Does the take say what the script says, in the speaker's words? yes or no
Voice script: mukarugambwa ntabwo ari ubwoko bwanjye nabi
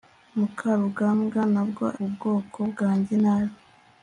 no